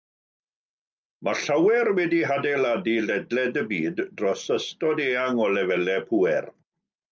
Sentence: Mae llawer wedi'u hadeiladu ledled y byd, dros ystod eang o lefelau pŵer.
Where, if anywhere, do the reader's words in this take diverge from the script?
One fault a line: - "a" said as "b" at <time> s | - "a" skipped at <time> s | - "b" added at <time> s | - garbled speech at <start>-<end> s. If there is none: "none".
none